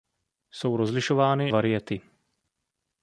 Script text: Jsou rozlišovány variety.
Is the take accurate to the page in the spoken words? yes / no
yes